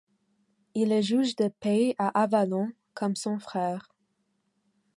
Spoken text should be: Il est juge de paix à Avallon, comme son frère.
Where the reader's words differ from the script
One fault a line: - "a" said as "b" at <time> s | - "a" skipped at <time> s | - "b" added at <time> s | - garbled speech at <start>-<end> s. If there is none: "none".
none